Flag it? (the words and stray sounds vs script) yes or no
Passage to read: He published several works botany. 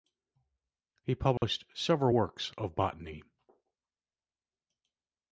yes